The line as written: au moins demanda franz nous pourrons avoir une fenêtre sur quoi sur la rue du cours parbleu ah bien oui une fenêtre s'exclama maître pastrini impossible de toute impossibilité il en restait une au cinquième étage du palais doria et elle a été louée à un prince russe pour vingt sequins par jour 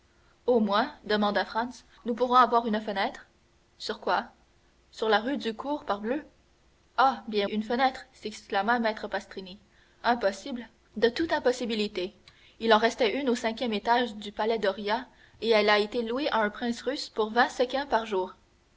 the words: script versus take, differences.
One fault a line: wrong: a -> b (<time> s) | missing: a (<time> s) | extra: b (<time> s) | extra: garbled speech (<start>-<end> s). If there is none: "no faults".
missing: oui (7.5 s)